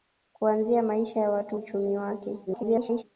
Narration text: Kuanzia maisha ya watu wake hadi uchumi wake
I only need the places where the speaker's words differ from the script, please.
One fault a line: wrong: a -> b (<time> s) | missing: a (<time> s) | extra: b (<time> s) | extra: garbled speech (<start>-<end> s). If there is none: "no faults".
missing: wake hadi (1.6 s)
extra: garbled speech (2.5-3.0 s)